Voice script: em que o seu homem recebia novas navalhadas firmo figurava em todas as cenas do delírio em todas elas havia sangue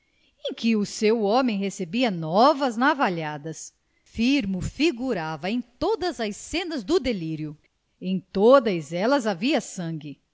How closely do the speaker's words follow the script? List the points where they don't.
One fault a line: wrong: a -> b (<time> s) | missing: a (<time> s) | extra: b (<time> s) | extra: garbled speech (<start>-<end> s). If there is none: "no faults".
no faults